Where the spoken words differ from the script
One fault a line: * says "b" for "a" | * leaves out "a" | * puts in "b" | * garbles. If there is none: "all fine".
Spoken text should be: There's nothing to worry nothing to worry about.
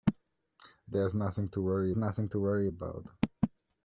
all fine